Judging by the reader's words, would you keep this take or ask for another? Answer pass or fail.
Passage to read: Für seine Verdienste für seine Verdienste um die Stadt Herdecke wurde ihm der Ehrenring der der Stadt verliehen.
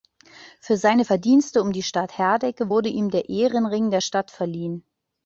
fail